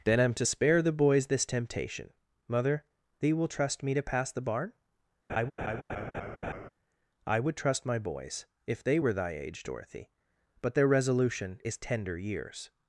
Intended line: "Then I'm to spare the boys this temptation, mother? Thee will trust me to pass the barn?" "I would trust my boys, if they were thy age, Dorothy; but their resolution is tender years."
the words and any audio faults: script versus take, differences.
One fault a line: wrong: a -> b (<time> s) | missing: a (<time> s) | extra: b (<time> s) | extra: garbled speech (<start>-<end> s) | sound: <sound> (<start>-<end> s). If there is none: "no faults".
sound: laugh (5.3-6.7 s)